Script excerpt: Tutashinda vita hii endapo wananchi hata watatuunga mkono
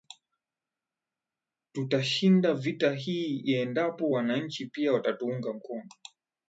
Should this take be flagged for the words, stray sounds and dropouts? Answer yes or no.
yes